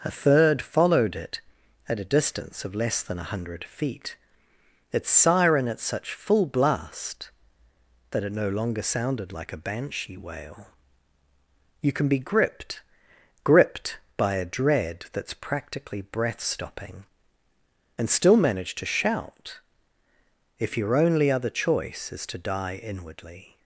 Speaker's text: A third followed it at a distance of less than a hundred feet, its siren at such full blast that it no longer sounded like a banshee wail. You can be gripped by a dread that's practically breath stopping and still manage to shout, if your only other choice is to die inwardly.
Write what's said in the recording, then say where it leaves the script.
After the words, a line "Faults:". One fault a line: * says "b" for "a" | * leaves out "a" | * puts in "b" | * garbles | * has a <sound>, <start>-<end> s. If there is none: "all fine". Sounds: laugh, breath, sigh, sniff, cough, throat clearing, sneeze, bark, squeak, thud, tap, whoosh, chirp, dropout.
A third followed it at a distance of less than a hundred feet, its siren at such full blast that it no longer sounded like a banshee wail. You can be gripped gripped by a dread that's practically breath stopping and still manage to shout, if your only other choice is to die inwardly.
Faults:
* puts in "gripped"